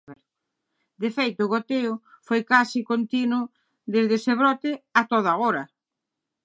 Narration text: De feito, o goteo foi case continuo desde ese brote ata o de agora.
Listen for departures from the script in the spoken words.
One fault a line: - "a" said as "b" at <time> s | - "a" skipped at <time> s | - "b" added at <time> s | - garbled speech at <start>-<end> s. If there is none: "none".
none